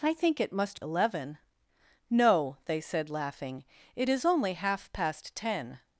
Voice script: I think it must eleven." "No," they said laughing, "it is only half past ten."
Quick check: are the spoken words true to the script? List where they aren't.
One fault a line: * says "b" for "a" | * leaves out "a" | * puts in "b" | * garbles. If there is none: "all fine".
all fine